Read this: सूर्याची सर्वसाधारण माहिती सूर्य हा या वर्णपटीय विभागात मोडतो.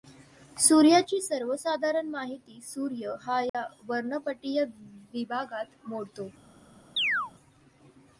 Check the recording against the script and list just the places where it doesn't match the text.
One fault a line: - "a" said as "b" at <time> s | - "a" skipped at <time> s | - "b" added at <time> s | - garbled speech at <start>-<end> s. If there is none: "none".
none